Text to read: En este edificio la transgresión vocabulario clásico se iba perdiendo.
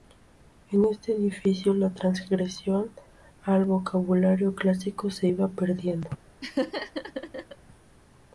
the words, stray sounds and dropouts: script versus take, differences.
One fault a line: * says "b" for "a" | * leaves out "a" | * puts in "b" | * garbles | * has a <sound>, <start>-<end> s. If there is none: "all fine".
* puts in "al"
* has a laugh, 6.4-7.6 s